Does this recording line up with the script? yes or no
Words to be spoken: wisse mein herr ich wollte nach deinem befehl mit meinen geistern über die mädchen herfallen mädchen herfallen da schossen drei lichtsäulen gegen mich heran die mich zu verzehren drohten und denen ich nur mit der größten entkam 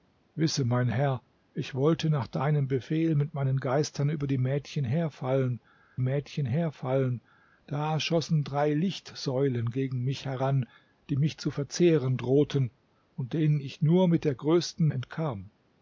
yes